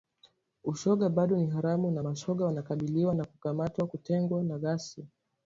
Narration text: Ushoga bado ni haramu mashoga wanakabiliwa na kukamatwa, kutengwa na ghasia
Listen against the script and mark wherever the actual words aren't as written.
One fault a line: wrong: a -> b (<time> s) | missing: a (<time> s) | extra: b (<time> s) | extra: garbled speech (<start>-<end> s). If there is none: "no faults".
extra: na (1.9 s)